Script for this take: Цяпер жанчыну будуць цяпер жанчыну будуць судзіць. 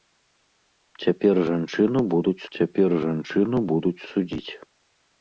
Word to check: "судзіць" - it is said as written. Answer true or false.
true